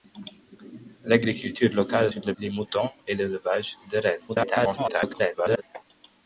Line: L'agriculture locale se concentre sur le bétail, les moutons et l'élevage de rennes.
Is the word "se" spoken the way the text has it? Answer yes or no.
no